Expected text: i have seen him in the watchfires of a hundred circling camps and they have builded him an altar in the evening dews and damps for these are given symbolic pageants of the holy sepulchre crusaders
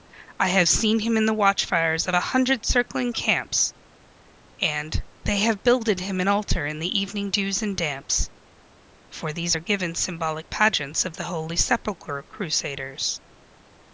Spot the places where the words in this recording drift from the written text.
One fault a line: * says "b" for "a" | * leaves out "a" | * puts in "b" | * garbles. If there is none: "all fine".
all fine